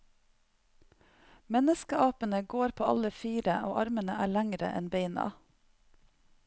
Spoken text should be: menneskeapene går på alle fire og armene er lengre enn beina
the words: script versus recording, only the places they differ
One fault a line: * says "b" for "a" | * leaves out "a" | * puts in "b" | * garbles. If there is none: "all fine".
all fine